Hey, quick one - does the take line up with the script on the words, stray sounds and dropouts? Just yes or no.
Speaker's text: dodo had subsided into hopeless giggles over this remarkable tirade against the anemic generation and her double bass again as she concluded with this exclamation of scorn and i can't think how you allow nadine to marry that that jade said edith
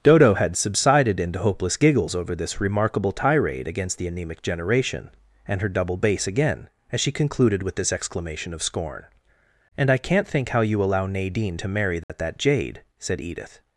no